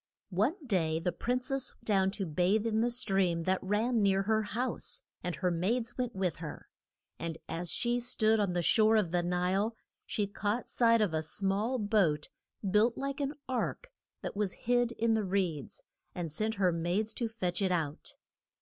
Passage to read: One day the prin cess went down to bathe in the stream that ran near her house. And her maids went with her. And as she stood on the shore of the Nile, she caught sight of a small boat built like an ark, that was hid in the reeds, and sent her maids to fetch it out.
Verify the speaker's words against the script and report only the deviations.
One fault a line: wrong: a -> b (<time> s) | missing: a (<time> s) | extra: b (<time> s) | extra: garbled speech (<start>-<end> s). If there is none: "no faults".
missing: went (1.7 s)